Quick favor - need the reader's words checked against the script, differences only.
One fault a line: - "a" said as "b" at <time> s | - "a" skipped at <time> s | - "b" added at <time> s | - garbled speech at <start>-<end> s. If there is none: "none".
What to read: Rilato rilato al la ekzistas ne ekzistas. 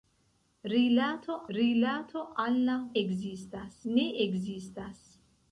none